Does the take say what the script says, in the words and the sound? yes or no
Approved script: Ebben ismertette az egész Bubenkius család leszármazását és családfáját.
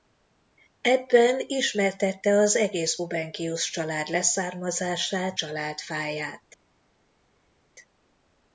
no